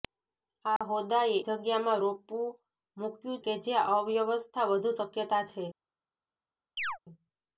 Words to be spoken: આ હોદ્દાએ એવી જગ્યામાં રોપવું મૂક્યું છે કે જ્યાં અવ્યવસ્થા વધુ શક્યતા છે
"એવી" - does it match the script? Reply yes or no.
no